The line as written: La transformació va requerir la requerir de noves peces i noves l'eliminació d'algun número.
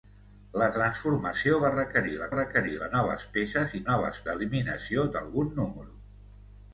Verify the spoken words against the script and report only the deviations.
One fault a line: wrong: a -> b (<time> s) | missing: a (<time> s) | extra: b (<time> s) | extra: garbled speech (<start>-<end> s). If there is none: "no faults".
no faults